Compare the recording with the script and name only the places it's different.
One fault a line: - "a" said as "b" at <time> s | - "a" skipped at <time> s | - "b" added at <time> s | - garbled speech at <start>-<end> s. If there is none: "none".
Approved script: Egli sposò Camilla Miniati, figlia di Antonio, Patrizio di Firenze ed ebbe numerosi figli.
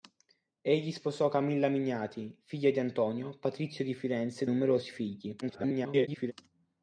- "ebbe" skipped at 4.5 s
- garbled speech at 5.4-6.3 s